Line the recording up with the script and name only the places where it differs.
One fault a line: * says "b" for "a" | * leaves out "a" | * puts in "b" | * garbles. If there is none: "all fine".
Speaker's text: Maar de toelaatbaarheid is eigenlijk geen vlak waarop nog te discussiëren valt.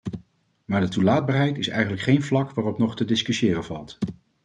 all fine